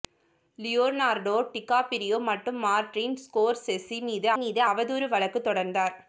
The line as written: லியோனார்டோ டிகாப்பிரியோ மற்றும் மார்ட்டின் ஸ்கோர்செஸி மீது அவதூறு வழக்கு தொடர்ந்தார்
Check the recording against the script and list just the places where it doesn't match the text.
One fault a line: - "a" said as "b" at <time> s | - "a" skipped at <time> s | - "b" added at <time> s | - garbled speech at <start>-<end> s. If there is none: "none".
- "மீது" added at 4.4 s